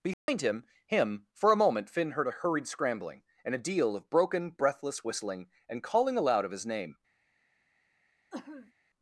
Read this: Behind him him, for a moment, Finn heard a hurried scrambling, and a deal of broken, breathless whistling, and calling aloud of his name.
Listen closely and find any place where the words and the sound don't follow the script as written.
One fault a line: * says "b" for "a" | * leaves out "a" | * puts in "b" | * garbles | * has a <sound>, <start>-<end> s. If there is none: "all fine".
* has a dropout, 0.1-0.3 s
* has a sneeze, 8.3-8.7 s